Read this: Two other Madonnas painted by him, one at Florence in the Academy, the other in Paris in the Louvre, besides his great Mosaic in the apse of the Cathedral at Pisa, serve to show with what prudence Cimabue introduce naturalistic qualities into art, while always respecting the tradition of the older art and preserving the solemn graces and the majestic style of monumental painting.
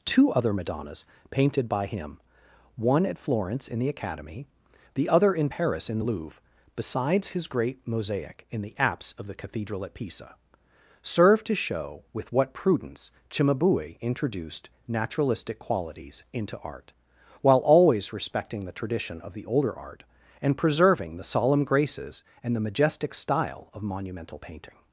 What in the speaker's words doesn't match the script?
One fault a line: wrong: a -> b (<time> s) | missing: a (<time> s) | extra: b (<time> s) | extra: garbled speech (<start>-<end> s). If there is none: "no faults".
wrong: introduce -> introduced (14.0 s)